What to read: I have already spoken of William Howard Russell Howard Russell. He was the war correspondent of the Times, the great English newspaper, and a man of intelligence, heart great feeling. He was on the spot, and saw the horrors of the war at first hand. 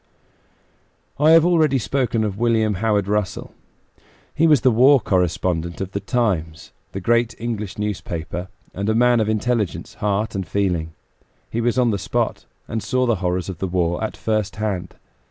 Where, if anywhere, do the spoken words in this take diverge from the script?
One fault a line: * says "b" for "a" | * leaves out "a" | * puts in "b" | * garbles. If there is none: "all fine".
* leaves out "Howard Russell"
* says "and" for "great"